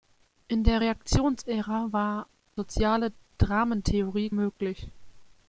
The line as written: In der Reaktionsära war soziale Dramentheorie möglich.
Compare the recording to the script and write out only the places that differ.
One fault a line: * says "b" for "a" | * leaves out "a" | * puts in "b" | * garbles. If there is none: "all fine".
all fine